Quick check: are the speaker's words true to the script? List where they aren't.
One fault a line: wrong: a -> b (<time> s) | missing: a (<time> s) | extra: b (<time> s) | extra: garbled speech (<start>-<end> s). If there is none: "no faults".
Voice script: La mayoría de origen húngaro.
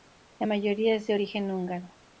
extra: es (0.9 s)